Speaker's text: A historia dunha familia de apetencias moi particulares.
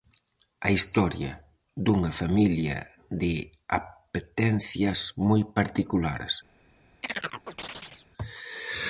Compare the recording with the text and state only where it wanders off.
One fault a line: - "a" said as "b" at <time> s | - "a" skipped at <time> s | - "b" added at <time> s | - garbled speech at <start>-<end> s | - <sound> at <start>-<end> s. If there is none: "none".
- chirp at 7.0-8.1 s